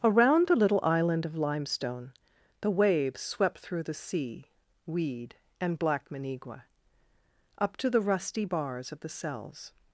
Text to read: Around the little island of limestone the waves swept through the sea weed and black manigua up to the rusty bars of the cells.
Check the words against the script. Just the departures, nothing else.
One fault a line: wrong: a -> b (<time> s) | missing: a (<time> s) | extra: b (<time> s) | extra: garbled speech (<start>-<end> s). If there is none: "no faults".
no faults